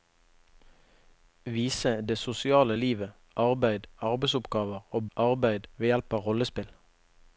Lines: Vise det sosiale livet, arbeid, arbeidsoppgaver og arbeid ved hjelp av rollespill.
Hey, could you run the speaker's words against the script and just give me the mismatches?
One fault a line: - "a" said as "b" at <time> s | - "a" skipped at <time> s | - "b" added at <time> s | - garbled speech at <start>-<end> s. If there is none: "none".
none